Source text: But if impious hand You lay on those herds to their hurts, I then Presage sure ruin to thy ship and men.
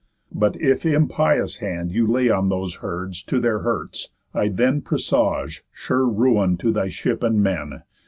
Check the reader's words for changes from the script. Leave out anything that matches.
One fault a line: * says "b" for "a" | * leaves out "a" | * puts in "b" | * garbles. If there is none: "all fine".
all fine